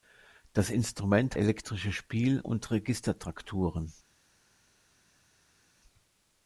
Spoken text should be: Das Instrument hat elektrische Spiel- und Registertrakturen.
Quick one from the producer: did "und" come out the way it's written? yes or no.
yes